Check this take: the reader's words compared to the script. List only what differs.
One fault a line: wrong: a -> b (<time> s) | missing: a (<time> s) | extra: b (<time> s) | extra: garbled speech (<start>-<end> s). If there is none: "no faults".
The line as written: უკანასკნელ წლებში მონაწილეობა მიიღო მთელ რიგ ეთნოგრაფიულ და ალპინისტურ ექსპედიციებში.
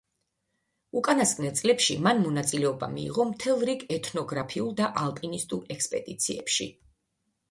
extra: მან (2.0 s)